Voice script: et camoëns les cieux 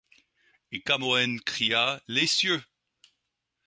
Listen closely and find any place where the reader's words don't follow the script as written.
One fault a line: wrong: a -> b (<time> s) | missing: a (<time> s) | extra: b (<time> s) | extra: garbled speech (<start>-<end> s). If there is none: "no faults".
extra: cria (1.4 s)